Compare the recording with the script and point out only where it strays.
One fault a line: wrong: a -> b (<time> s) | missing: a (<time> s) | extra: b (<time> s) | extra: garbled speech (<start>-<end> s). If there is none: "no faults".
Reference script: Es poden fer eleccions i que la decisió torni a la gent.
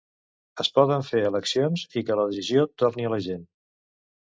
no faults